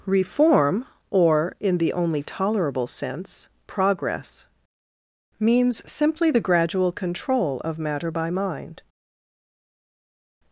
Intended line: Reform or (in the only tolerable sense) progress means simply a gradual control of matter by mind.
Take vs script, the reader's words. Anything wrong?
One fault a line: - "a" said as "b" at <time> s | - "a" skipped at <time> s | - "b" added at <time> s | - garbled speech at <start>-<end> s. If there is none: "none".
- "a" said as "the" at 6.3 s